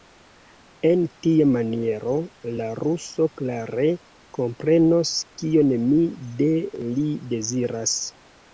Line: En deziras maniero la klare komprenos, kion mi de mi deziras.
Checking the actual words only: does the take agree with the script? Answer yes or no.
no